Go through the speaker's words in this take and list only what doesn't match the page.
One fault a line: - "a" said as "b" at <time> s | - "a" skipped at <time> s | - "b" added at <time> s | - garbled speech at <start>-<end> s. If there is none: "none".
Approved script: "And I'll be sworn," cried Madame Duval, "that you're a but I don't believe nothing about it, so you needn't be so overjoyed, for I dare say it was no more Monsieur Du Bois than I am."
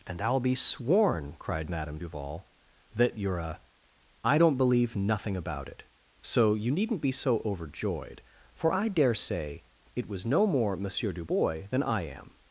- "but" skipped at 3.6 s